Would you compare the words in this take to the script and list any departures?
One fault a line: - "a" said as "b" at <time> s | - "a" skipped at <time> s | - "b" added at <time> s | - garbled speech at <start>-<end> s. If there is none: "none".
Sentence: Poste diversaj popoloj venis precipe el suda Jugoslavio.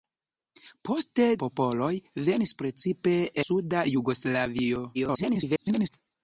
- "diversaj" skipped at 1.3 s
- "el" skipped at 3.1 s
- garbled speech at 4.9-5.9 s